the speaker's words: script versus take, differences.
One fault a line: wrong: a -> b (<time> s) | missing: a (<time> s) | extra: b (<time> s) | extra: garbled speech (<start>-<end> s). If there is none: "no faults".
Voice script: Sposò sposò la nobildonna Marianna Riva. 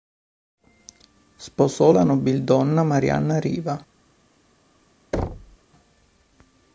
missing: sposò (1.9 s)